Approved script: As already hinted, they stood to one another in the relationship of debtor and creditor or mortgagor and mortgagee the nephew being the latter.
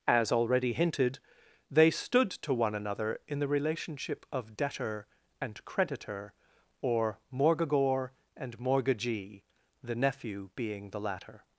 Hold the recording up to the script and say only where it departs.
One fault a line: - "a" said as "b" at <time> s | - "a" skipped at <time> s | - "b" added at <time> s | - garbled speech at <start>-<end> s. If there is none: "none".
none